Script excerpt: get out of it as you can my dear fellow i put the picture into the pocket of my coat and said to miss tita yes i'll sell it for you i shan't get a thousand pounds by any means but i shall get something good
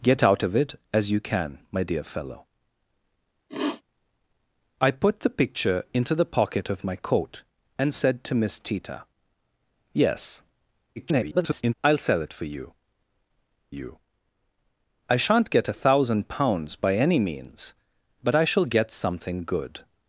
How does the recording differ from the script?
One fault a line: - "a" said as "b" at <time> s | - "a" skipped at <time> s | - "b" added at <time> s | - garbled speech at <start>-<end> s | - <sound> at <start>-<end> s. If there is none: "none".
- sniff at 3.5-3.8 s
- garbled speech at 11.0-11.7 s
- "you" added at 13.7 s